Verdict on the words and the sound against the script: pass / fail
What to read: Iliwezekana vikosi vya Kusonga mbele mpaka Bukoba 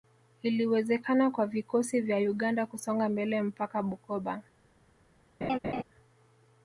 fail